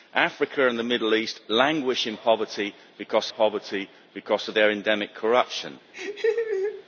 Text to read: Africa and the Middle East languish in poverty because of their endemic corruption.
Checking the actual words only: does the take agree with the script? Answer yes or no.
no